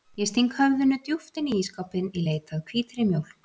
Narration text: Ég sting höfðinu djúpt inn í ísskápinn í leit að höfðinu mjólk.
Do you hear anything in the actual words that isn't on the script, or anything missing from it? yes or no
yes